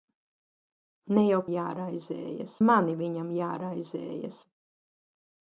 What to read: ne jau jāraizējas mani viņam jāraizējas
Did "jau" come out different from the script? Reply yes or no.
no